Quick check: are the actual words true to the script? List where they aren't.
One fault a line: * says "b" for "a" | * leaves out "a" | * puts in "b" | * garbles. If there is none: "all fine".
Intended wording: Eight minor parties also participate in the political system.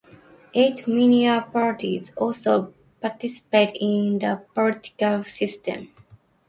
all fine